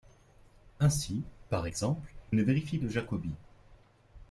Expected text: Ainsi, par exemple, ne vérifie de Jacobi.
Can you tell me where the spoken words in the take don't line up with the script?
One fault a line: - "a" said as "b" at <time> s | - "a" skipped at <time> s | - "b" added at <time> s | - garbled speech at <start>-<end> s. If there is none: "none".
none